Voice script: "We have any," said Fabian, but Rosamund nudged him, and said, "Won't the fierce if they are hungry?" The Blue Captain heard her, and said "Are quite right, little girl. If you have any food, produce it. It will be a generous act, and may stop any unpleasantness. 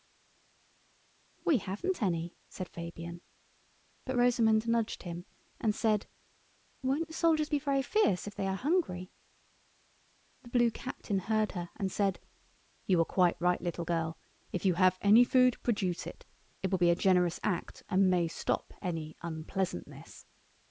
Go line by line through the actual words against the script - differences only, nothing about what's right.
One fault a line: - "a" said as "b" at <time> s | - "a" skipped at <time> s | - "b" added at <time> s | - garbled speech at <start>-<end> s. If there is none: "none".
- "have" said as "haven't" at 1.6 s
- "soldiers be very" added at 7.1 s
- "You" added at 12.9 s